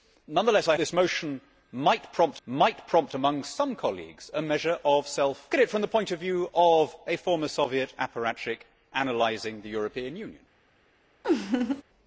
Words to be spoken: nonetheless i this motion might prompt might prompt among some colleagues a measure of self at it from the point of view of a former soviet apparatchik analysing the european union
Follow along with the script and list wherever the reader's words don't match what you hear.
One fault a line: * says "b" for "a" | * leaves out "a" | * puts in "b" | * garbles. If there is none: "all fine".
all fine